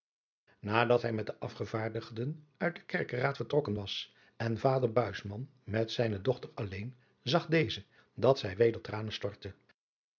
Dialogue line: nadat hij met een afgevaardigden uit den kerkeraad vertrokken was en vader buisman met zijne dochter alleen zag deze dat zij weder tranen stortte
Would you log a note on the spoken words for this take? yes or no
yes